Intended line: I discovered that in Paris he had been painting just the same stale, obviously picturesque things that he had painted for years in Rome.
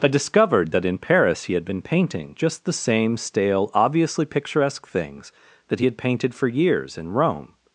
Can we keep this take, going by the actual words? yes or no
yes